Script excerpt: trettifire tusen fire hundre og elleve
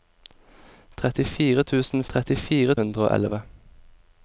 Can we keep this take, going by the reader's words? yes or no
no